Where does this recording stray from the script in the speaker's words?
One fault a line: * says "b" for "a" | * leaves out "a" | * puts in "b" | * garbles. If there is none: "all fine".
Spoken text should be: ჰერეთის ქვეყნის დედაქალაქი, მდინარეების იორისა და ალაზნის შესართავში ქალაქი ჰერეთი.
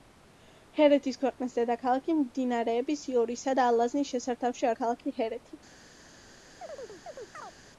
all fine